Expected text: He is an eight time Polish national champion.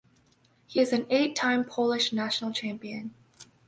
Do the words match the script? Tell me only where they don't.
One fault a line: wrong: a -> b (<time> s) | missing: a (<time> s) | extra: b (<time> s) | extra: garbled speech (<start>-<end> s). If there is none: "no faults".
no faults